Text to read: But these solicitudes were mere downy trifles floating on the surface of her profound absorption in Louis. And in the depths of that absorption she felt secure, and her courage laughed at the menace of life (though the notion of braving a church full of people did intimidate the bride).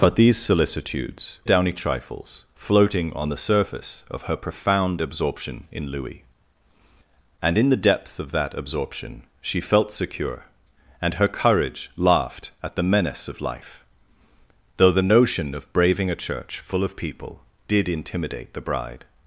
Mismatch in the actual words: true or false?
true